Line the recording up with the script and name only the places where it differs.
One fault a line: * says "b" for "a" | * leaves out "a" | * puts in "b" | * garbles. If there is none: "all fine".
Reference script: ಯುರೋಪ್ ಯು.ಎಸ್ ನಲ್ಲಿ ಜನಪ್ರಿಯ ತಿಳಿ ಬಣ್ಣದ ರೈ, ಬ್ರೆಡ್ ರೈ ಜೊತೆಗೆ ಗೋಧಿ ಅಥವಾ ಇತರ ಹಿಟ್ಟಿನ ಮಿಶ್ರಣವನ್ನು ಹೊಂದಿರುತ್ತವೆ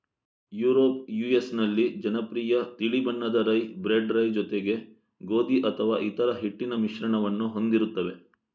all fine